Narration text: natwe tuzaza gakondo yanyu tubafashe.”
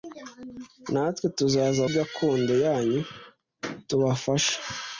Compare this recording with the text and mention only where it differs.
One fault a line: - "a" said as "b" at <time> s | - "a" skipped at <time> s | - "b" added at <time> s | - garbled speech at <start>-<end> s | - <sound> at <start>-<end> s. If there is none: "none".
none